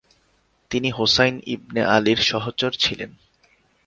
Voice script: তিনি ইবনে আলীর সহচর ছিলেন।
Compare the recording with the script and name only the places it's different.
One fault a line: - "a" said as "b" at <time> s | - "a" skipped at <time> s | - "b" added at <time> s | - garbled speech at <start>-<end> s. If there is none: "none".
- "হোসাইন" added at 0.9 s